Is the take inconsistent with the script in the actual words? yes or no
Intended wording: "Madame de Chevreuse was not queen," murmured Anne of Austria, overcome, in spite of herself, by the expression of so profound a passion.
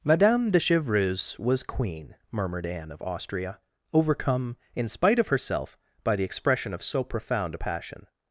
yes